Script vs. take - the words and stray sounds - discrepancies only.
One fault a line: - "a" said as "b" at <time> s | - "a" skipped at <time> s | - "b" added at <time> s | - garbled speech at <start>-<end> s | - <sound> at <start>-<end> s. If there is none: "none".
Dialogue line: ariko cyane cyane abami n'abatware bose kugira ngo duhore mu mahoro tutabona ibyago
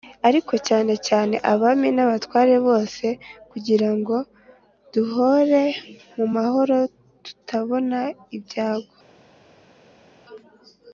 none